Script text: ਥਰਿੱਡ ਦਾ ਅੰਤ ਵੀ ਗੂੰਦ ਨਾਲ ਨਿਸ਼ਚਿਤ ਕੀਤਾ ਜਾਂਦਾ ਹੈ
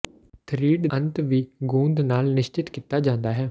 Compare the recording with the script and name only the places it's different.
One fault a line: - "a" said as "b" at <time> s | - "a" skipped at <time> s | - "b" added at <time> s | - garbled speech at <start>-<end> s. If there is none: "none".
- "ਦਾ" skipped at 0.9 s